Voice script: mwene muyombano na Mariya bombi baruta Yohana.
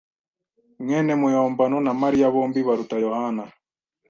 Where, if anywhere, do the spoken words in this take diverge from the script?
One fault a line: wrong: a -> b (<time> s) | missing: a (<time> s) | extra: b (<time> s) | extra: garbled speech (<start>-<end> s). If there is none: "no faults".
no faults